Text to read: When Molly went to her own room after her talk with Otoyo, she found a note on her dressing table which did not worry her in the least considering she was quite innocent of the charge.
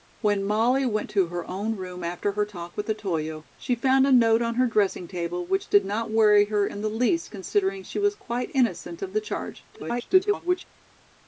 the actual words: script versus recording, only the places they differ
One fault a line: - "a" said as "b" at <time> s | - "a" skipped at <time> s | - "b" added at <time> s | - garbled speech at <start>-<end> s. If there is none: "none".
- garbled speech at 9.7-10.7 s